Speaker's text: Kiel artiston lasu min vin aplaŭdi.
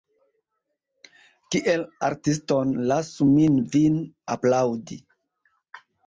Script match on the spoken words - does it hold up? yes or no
yes